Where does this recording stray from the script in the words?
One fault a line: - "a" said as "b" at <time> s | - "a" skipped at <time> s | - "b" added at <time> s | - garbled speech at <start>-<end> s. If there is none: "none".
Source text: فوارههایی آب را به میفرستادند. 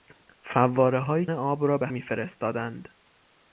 none